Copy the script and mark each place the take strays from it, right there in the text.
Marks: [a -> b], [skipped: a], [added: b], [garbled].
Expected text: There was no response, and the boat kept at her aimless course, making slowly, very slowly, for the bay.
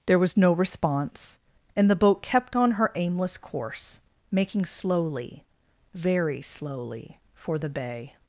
There was no response, and the boat kept [at -> on] her aimless course, making slowly, very slowly, for the bay.